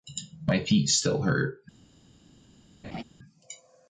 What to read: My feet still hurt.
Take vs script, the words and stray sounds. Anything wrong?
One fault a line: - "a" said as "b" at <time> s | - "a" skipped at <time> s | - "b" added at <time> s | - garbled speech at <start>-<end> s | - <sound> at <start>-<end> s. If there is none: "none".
- laugh at 2.8-3.0 s